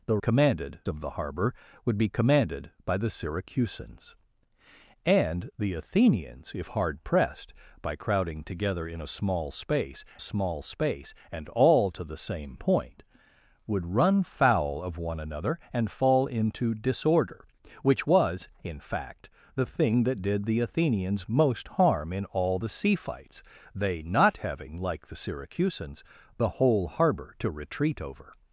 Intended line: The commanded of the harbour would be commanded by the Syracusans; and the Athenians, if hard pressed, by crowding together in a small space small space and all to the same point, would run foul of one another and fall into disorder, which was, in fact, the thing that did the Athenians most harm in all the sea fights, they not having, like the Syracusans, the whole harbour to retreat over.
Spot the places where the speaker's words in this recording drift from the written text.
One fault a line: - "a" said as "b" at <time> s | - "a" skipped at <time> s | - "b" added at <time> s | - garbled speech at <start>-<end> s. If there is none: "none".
none